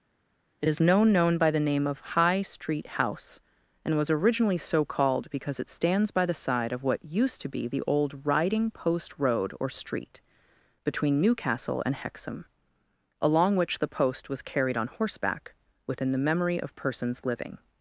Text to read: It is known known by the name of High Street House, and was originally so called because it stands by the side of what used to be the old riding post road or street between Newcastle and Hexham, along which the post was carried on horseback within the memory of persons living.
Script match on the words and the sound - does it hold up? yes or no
yes